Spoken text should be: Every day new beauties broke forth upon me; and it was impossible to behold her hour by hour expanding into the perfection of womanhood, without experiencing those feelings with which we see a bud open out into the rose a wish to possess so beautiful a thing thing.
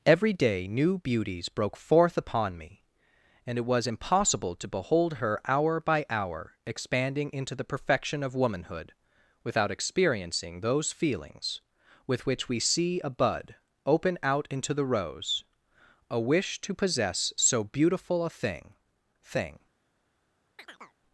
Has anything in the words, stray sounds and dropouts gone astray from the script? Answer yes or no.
yes